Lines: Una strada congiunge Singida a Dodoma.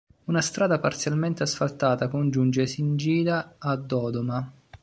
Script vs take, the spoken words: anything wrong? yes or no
yes